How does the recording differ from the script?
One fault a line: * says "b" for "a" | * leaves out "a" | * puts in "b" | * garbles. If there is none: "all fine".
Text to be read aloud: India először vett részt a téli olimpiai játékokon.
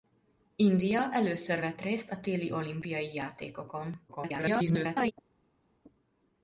* garbles